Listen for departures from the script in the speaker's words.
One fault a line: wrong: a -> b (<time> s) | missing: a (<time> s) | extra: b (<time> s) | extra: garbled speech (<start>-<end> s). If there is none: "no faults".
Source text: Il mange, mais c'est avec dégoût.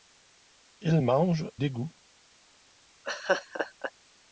missing: mais c'est avec (1.5 s)